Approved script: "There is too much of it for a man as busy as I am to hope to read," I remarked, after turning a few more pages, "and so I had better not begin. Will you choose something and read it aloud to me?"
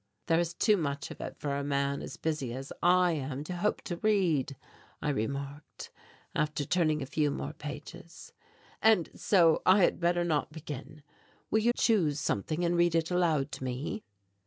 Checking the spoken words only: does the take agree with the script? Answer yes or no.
yes